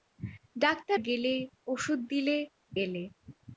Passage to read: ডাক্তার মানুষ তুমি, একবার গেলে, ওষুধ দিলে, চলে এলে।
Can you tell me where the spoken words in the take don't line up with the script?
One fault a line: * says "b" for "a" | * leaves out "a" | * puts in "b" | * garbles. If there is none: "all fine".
* leaves out "মানুষ তুমি একবার"
* leaves out "চলে"